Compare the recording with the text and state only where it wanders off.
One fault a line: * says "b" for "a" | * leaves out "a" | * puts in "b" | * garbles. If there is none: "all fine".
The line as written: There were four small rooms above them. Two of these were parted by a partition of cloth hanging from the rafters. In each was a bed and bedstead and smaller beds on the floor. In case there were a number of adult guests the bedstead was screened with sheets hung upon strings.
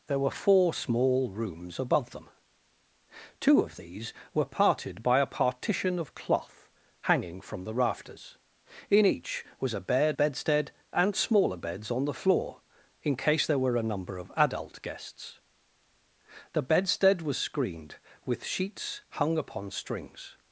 * leaves out "and"